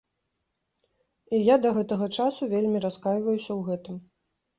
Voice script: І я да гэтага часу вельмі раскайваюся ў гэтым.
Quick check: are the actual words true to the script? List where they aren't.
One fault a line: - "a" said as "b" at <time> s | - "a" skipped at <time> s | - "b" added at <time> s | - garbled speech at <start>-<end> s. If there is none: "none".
none